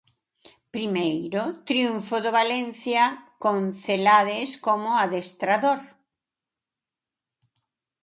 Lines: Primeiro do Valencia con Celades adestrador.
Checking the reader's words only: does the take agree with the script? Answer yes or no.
no